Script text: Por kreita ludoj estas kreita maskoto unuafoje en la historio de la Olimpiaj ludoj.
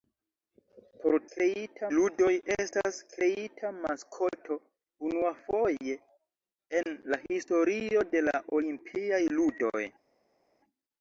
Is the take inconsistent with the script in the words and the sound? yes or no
no